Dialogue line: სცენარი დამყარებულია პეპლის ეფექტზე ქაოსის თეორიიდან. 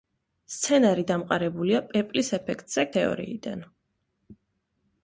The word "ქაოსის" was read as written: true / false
false